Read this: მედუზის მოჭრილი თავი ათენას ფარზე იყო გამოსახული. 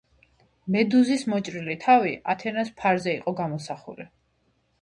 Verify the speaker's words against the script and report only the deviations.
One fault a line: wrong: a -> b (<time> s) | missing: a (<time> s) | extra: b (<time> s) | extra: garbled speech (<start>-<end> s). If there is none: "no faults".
no faults